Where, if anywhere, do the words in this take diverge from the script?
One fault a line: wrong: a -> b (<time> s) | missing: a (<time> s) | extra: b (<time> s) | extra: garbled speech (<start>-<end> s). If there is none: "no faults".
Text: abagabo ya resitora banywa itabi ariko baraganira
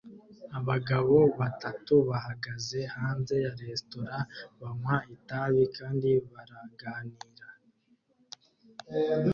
extra: batatu bahagaze hanze (1.4 s)
wrong: ariko -> kandi (5.8 s)